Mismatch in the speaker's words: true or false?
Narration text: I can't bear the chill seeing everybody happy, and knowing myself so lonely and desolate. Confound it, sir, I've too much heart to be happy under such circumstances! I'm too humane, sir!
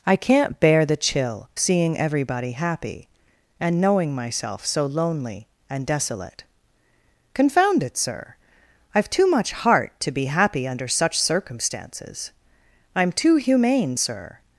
false